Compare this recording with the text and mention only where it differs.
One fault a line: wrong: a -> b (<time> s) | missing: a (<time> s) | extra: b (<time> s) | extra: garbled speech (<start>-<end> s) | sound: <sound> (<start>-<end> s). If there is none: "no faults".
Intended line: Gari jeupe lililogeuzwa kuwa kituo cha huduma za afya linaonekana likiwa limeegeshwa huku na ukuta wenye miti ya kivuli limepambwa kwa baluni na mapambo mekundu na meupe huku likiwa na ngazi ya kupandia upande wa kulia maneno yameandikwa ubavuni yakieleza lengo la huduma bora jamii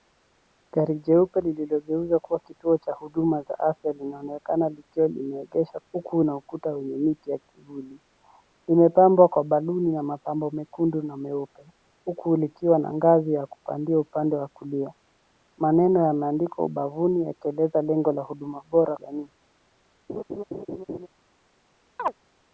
sound: laugh (20.1-21.1 s)
sound: chirp (22.0-22.1 s)